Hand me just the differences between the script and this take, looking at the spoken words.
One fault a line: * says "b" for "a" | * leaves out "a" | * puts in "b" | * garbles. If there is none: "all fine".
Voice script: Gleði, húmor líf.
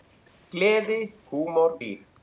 all fine